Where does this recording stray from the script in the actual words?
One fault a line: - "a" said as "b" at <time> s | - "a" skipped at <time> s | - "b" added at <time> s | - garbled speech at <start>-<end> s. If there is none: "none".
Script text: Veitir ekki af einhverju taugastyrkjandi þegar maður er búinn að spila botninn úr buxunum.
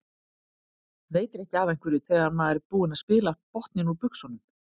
- "taugastyrkjandi" skipped at 2.0 s